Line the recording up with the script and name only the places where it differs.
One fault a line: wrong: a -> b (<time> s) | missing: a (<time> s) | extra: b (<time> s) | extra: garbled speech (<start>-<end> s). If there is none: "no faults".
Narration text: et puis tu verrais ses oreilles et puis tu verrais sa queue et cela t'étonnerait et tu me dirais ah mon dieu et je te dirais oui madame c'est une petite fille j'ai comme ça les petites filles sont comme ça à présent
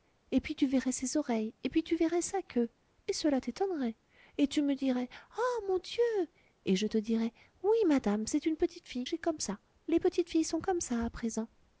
no faults